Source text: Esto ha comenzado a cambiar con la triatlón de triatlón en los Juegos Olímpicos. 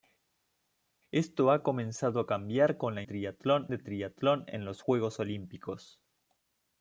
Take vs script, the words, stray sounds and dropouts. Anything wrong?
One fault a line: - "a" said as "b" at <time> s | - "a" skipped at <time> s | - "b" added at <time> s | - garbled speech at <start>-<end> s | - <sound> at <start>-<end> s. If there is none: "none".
none